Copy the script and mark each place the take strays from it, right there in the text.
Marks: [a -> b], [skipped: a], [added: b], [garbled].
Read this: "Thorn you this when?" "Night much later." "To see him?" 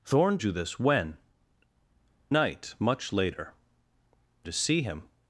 "Thorn you this when?" "Night much later." "To see him?"